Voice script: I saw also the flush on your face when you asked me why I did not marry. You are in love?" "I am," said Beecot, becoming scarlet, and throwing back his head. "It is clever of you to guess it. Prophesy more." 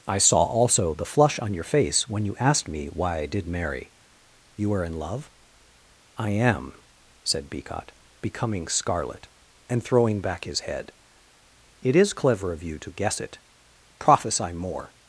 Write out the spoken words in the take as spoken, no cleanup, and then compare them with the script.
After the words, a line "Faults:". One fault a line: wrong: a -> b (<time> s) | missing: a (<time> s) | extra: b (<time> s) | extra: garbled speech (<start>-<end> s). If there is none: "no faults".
I saw also the flush on your face when you asked me why I did marry. You are in love?" "I am," said Beecot, becoming scarlet, and throwing back his head. "It is clever of you to guess it. Prophesy more."
Faults:
missing: not (3.5 s)